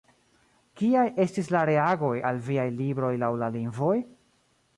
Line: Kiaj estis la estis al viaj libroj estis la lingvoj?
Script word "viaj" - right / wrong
right